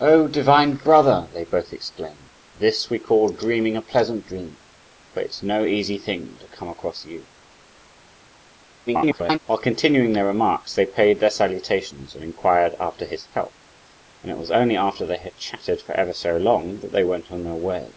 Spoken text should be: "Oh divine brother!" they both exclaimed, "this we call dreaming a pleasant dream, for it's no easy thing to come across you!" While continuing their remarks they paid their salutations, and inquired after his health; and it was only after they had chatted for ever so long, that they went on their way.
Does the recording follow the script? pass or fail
fail